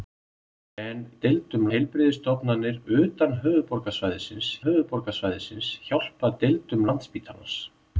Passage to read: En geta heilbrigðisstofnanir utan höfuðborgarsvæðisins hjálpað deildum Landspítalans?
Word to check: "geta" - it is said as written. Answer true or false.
false